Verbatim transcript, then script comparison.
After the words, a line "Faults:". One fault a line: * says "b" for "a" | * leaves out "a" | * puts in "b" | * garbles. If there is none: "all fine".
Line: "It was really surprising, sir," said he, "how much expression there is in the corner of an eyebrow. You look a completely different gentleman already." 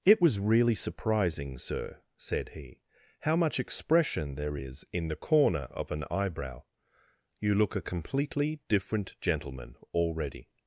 "It was really surprising, sir," said he, "how much expression there is in the corner of an eyebrow. You look a completely different gentleman already."
Faults:
all fine